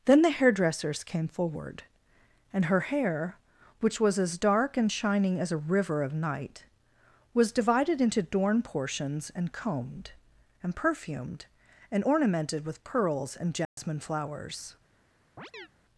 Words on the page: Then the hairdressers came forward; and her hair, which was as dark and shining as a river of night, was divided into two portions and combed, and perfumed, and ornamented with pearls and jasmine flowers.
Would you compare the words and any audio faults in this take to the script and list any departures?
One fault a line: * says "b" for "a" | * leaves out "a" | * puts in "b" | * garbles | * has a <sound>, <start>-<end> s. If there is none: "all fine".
* says "dorn" for "two"
* has a dropout, 13.6-13.8 s
* has a chirp, 15.4-15.7 s